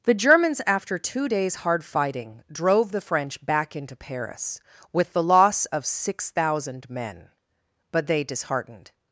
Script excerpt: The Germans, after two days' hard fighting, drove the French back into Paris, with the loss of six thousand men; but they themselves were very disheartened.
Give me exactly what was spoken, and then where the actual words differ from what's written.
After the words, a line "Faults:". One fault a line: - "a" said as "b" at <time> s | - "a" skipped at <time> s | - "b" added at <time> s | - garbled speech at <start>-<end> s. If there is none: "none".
The Germans, after two days' hard fighting, drove the French back into Paris, with the loss of six thousand men; but they disheartened.
Faults:
- "themselves were very" skipped at 8.2 s